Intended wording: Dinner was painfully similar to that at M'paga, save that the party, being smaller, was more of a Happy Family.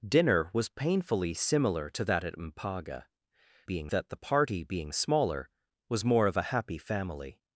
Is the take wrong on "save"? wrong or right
wrong